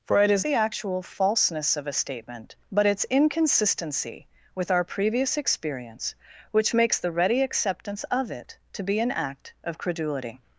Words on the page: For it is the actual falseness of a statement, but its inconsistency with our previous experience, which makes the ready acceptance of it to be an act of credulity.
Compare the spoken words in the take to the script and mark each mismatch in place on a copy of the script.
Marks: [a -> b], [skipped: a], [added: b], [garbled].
For it is the actual falseness of a statement, but its inconsistency with our previous experience, which makes the ready acceptance of it to be an act of credulity.